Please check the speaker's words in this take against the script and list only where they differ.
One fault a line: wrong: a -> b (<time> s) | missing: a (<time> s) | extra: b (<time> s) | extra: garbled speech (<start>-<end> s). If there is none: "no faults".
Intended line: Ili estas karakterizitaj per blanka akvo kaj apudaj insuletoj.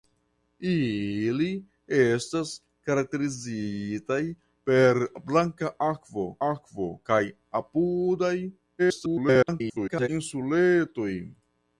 extra: akvo (6.5 s)
extra: garbled speech (8.8-10.1 s)